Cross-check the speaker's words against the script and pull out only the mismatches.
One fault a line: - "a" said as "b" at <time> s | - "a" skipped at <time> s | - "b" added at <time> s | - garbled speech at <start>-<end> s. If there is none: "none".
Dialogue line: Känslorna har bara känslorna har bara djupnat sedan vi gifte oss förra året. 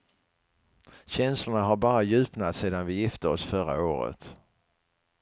- "känslorna har bara" skipped at 2.0 s